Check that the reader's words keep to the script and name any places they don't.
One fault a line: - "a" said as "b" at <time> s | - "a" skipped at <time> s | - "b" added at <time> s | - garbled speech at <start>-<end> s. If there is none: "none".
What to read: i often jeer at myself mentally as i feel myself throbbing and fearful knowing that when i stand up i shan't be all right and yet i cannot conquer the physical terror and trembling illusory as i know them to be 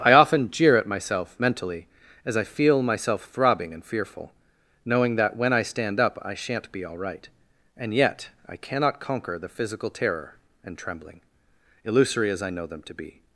none